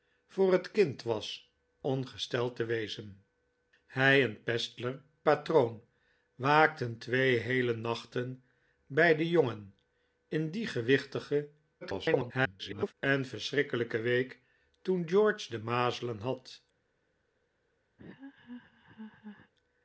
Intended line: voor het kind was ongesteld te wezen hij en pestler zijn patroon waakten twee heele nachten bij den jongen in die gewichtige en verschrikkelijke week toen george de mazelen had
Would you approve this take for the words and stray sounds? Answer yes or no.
no